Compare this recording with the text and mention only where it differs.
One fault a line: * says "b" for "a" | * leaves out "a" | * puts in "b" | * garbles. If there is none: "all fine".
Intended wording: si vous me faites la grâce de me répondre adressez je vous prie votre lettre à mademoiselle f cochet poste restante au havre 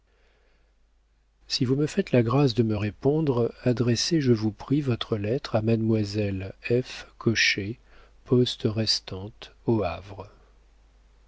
all fine